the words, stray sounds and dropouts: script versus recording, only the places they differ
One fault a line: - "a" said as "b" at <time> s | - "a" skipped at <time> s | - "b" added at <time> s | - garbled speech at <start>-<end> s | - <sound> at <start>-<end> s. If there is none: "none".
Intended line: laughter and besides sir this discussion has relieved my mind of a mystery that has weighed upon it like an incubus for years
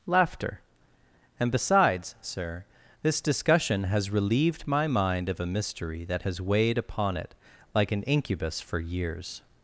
none